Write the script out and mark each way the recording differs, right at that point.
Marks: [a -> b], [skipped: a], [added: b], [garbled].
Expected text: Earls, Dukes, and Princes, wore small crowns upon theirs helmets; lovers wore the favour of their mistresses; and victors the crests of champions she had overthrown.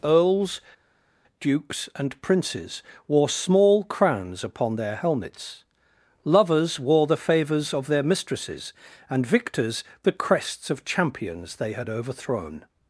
Earls, Dukes, and Princes, wore small crowns upon [theirs -> their] helmets; lovers wore the [favour -> favours] of their mistresses; and victors the crests of champions [she -> they] had overthrown.